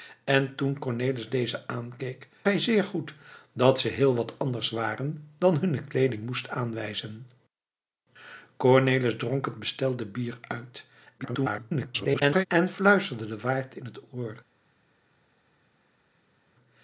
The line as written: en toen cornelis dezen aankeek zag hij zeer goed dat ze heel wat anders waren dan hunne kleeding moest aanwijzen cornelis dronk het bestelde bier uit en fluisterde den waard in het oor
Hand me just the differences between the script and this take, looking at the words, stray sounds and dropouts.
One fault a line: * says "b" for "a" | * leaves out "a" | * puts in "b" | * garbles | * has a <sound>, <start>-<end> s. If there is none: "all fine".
* leaves out "zag"
* garbles